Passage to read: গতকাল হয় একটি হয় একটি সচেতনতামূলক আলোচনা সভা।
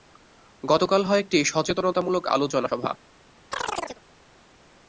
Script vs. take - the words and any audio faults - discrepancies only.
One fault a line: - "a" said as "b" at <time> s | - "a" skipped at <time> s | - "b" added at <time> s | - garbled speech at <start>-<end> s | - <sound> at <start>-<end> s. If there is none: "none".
- "হয় একটি" skipped at 1.4 s
- chirp at 3.5-4.0 s